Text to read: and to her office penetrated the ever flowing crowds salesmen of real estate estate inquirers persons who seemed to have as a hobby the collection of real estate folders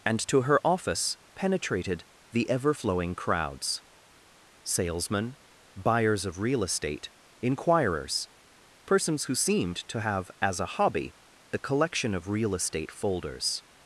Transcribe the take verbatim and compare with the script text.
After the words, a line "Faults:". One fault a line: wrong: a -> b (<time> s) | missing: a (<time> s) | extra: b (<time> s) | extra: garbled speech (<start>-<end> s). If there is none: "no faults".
and to her office penetrated the ever flowing crowds salesmen buyers of real estate inquirers persons who seemed to have as a hobby the collection of real estate folders
Faults:
extra: buyers (5.7 s)
missing: estate (7.1 s)